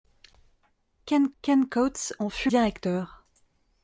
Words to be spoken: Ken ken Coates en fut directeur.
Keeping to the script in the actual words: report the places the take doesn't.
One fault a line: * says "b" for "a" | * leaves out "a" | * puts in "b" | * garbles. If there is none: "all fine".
all fine